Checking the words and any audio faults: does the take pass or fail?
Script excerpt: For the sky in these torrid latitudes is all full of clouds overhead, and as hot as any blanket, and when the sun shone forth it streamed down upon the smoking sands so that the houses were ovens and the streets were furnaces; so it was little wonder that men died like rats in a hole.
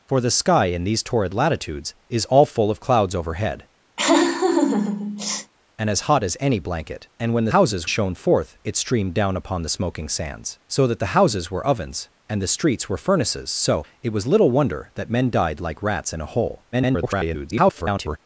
fail